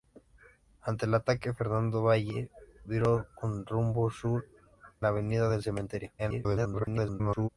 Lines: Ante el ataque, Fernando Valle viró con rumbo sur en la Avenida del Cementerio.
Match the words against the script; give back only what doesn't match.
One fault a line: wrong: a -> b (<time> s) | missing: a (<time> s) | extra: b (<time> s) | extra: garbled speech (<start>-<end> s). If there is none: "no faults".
missing: en (4.5 s)
extra: garbled speech (6.2-7.5 s)